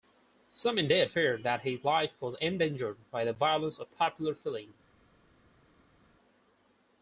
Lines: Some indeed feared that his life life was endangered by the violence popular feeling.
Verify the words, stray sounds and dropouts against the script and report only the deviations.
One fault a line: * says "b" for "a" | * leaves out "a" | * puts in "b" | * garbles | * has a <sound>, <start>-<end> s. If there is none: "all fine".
* leaves out "life"
* puts in "of"